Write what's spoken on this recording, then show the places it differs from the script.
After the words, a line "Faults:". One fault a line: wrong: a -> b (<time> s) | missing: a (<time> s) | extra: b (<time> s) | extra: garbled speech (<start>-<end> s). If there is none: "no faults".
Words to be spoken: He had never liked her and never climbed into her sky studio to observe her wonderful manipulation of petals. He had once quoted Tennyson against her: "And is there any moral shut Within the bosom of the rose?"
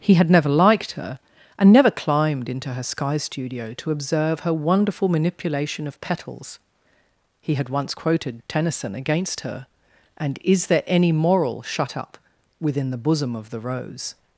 He had never liked her and never climbed into her sky studio to observe her wonderful manipulation of petals. He had once quoted Tennyson against her: "And is there any moral shut up Within the bosom of the rose?"
Faults:
extra: up (12.0 s)